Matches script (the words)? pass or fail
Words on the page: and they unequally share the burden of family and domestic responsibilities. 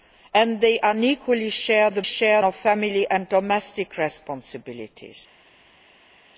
fail